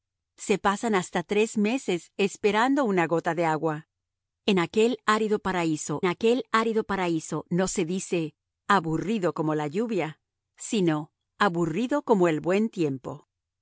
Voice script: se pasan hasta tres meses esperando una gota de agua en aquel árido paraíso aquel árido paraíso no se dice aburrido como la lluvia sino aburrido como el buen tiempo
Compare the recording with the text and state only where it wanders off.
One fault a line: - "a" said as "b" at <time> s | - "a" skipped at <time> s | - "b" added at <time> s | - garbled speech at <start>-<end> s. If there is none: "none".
none